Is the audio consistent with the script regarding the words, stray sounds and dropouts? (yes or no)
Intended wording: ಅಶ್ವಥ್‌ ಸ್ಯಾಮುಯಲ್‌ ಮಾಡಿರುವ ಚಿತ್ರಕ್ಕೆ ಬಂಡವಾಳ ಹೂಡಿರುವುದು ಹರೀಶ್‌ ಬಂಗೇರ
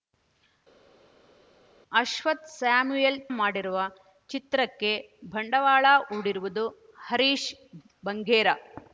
yes